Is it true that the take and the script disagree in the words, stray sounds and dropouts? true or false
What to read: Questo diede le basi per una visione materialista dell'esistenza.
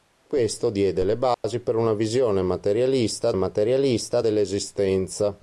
true